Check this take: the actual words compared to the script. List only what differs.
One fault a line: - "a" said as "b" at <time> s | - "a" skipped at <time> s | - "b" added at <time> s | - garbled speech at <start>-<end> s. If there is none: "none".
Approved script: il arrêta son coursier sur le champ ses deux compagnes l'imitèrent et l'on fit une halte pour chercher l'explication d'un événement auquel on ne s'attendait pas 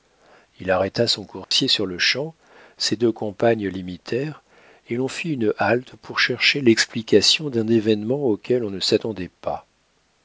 none